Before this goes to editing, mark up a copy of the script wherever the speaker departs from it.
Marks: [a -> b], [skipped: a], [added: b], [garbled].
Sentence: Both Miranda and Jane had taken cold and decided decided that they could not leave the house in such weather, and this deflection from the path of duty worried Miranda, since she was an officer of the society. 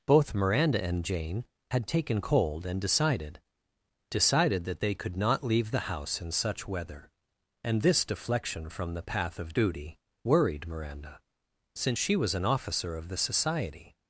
Both Miranda and Jane had taken cold and decided decided that they could not leave the house in such weather, and this deflection from the path of duty worried Miranda, since she was an officer of the society.